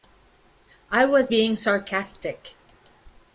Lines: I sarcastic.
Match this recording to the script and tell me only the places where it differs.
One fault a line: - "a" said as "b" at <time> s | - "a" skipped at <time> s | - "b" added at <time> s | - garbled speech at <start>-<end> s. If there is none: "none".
- "was being" added at 1.1 s